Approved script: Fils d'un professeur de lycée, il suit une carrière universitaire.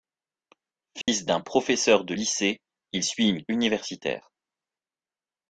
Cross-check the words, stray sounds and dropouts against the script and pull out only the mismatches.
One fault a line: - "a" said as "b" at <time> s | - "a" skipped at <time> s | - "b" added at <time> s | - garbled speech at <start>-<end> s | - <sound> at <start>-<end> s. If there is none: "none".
- dropout at 1.0-1.1 s
- "carrière" skipped at 3.4 s